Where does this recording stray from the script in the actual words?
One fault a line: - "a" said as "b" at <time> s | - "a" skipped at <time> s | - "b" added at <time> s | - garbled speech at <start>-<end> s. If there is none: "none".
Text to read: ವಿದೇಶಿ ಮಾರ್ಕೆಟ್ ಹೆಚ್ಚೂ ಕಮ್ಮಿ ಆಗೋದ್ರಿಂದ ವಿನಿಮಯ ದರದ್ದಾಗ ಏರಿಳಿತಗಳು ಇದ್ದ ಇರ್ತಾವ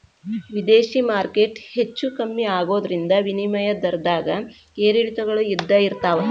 none